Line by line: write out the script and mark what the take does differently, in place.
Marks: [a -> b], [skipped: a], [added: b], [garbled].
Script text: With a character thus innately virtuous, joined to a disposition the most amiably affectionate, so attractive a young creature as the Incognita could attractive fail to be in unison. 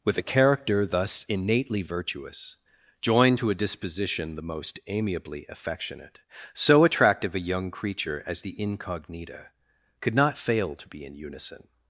With a character thus innately virtuous, joined to a disposition the most amiably affectionate, so attractive a young creature as the Incognita could [attractive -> not] fail to be in unison.